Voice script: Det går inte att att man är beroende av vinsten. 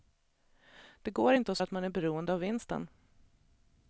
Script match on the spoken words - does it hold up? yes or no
yes